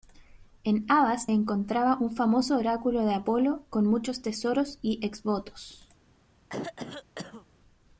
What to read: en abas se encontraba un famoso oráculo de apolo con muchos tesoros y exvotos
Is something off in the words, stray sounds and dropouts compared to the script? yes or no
yes